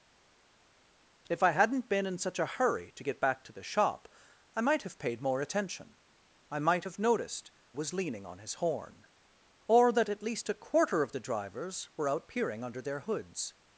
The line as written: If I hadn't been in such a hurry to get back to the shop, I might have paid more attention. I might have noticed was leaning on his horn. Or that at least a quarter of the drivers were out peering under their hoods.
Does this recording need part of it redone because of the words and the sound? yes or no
no